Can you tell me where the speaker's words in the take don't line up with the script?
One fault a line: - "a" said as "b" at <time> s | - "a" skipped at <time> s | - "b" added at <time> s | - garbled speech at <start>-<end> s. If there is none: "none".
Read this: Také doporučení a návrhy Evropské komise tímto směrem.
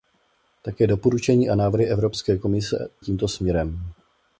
none